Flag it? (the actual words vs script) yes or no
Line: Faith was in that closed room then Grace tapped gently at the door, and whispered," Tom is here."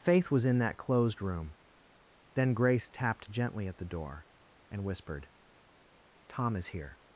no